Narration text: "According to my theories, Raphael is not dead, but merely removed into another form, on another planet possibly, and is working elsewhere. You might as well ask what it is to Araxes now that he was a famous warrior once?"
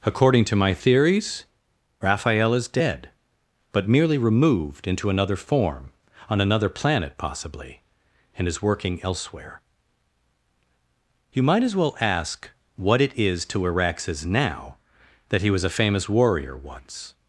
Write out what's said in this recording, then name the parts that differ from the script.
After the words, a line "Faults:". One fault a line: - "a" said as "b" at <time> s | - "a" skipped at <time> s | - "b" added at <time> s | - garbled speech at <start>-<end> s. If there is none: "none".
"According to my theories, Raphael is dead, but merely removed into another form, on another planet possibly, and is working elsewhere. You might as well ask what it is to Araxes now that he was a famous warrior once?"
Faults:
- "not" skipped at 2.7 s